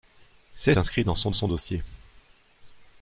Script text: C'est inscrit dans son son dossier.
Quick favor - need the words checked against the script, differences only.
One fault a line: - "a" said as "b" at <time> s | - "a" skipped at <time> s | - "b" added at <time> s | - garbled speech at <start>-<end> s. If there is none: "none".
none